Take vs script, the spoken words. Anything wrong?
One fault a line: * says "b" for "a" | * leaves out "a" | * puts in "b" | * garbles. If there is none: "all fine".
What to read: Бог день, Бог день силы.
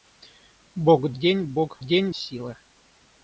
all fine